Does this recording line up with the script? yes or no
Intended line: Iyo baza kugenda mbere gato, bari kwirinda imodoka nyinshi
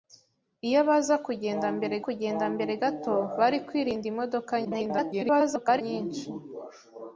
no